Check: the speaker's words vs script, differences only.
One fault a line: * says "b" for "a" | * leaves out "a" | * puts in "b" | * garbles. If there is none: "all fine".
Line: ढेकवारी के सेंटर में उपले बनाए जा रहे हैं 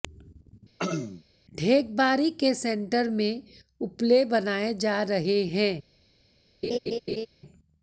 all fine